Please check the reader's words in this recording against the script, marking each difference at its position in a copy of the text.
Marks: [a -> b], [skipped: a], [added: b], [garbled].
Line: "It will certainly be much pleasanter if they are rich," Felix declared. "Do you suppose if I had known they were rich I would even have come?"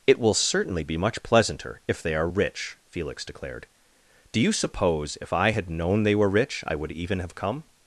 "It will certainly be much pleasanter if they are rich," Felix declared. "Do you suppose if I had known they were rich I would even have come?"